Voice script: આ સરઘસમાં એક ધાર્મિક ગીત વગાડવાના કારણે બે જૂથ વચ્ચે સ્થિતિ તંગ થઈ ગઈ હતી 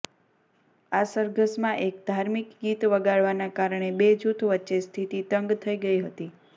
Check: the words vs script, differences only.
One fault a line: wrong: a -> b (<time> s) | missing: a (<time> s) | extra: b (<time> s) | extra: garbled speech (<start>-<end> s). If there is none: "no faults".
no faults